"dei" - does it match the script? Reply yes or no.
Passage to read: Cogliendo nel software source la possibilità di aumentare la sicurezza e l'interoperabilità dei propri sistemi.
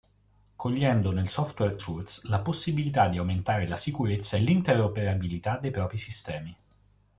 yes